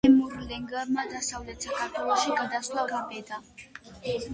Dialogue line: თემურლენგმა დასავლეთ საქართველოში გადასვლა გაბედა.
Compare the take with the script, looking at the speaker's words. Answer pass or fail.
pass